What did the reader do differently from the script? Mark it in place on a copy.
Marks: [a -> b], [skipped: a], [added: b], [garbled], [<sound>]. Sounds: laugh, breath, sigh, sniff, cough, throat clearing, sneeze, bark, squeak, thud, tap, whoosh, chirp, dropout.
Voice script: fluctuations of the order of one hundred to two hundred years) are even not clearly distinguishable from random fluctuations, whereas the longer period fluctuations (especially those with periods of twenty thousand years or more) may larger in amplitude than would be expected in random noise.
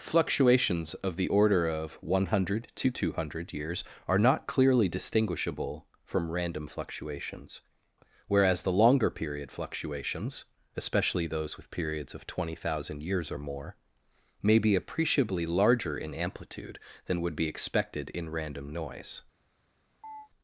fluctuations of the order of one hundred to two hundred years) are [skipped: even] not clearly distinguishable from random fluctuations, whereas the longer period fluctuations (especially those with periods of twenty thousand years or more) may [added: be appreciably] larger in amplitude than would be expected in random noise. [chirp]